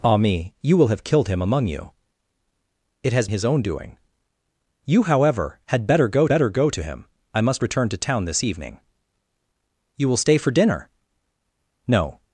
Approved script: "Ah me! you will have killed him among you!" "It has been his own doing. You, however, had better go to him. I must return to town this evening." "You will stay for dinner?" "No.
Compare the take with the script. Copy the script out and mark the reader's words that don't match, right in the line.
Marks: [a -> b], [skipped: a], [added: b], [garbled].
"Ah me! you will have killed him among you!" "It has [skipped: been] his own doing. You, however, had better go [added: better go] to him. I must return to town this evening." "You will stay for dinner?" "No.